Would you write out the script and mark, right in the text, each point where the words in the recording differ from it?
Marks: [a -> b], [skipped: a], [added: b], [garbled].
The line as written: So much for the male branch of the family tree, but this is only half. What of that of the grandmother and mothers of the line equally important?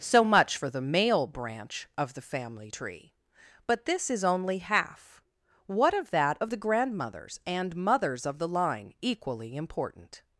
So much for the male branch of the family tree, but this is only half. What of that of the [grandmother -> grandmothers] and mothers of the line equally important?